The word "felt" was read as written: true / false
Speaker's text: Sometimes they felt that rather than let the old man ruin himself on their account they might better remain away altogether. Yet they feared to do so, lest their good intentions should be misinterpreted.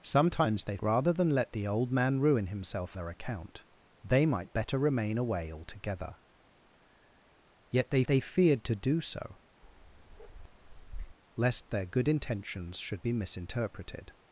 false